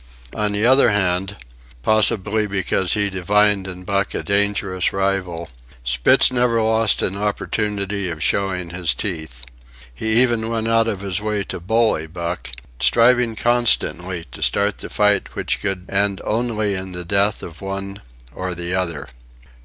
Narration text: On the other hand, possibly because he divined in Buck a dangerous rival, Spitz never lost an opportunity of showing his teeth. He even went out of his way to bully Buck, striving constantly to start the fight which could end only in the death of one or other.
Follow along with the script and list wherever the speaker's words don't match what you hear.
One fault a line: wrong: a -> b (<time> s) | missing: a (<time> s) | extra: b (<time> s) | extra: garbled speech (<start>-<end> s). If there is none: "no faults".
extra: the (18.5 s)